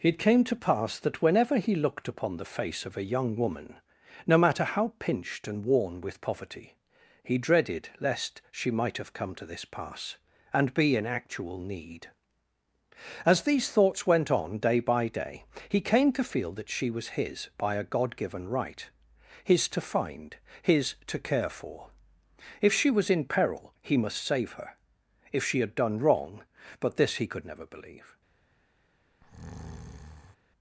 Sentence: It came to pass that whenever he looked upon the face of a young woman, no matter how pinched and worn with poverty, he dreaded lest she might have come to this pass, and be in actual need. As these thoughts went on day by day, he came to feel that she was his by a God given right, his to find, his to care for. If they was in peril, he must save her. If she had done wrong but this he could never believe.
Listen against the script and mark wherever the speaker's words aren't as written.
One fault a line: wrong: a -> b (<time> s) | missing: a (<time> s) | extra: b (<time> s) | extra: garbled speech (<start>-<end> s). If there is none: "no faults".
wrong: they -> she (22.7 s)